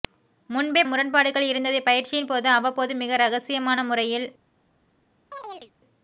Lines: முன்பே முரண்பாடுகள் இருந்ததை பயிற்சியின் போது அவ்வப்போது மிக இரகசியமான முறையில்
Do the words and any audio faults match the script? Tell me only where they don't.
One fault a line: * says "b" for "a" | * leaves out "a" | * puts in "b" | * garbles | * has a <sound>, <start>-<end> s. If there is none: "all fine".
* has a chirp, 5.3-5.7 s